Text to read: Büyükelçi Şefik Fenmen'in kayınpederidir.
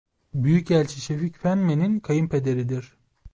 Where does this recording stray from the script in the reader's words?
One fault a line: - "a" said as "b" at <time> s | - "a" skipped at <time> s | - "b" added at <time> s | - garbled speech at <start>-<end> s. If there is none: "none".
none